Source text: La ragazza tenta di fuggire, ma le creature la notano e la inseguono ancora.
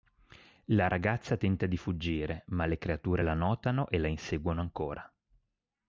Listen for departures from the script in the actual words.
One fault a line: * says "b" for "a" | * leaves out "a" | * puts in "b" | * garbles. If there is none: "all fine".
all fine